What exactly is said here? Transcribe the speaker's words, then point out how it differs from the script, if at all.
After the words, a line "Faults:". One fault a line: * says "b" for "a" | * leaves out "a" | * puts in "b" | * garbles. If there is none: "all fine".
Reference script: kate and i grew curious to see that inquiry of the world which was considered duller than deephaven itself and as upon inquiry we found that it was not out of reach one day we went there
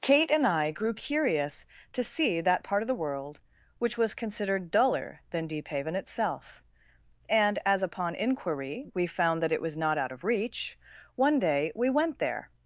kate and i grew curious to see that part of the world which was considered duller than deephaven itself and as upon inquiry we found that it was not out of reach one day we went there
Faults:
* says "part" for "inquiry"